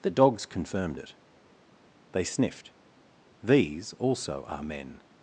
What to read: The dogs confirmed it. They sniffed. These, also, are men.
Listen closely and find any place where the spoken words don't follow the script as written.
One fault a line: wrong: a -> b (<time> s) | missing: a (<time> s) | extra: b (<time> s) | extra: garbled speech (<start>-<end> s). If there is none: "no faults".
no faults